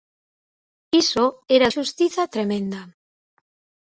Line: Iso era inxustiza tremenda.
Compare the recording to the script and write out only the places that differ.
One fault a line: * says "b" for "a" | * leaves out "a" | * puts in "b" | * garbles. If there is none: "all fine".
all fine